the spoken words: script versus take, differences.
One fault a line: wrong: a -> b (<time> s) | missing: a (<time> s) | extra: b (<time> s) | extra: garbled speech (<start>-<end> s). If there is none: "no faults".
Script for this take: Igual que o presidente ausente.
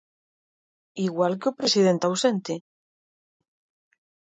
no faults